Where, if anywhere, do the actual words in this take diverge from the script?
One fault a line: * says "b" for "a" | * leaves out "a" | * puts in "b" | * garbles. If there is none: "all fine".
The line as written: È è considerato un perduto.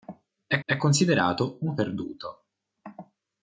all fine